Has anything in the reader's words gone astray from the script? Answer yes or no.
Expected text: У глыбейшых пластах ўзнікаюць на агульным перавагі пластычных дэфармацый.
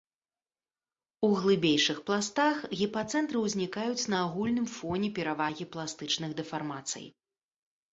yes